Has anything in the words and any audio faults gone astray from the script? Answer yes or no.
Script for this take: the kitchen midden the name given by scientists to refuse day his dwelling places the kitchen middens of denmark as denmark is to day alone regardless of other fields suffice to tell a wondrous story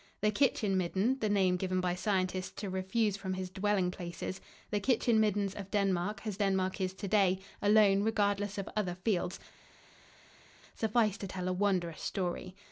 yes